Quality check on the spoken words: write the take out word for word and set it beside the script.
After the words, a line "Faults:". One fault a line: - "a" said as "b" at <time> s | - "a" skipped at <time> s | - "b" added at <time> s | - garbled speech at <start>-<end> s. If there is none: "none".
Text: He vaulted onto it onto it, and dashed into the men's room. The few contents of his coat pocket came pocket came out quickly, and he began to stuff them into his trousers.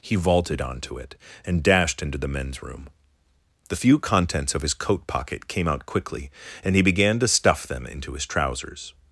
He vaulted onto it, and dashed into the men's room. The few contents of his coat pocket came out quickly, and he began to stuff them into his trousers.
Faults:
- "onto it" skipped at 1.1 s
- "pocket came" skipped at 5.7 s